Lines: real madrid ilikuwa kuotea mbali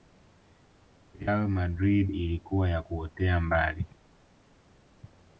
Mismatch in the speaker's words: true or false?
true